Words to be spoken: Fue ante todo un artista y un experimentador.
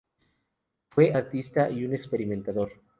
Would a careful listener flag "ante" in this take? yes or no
yes